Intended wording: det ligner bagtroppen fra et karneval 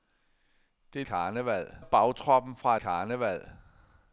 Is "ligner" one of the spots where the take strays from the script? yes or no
yes